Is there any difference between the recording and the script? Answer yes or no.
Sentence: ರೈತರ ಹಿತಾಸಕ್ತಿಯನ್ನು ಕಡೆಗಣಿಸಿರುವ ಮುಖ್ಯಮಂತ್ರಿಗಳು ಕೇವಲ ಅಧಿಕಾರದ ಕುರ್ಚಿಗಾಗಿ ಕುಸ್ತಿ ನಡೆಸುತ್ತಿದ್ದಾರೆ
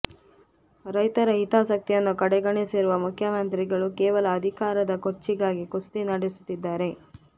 no